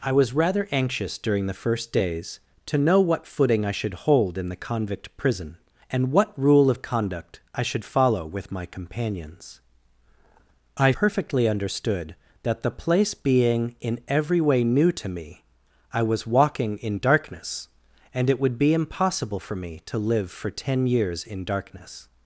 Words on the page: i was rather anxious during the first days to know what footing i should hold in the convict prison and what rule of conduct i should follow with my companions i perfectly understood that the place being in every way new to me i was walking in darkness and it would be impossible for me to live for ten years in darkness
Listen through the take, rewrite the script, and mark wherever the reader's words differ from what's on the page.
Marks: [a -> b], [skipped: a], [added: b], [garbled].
i was rather anxious during the first days to know what footing i should hold in the convict prison and what rule of conduct i should follow with my companions i perfectly understood that the place being in every way new to me i was walking in darkness and it would be impossible for me to live for ten years in darkness